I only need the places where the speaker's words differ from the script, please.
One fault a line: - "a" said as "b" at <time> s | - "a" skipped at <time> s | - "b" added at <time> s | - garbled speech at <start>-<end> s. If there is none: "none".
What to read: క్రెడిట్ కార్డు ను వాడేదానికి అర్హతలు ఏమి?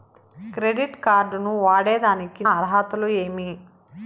none